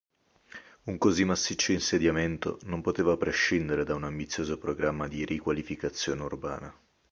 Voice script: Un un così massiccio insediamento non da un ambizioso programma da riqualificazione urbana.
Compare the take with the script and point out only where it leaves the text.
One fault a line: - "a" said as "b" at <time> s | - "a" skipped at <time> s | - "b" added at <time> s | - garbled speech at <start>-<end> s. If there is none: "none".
- "un" skipped at 1.0 s
- "poteva prescindere" added at 2.8 s
- "da" said as "di" at 5.1 s